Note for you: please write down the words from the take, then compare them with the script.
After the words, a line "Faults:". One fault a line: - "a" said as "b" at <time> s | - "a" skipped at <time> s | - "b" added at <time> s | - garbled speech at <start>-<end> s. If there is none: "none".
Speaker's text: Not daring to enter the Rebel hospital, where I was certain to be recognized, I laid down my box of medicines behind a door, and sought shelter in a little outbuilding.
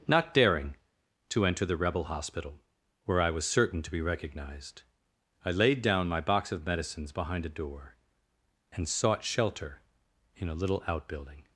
Not daring to enter the Rebel hospital, where I was certain to be recognized, I laid down my box of medicines behind a door, and sought shelter in a little outbuilding.
Faults:
none